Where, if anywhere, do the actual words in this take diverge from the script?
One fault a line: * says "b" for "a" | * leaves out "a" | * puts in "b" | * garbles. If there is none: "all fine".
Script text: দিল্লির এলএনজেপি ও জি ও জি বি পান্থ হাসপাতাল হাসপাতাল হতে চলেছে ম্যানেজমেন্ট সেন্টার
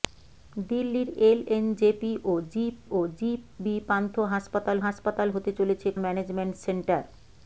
all fine